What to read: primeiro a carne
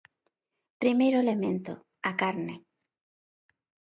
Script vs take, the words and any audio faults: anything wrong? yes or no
yes